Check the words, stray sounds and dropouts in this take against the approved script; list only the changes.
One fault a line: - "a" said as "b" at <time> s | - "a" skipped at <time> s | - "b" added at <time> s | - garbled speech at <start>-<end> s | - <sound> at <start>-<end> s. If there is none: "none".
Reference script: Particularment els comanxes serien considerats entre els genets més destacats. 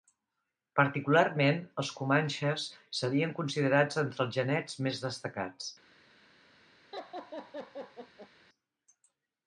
- laugh at 6.9-8.3 s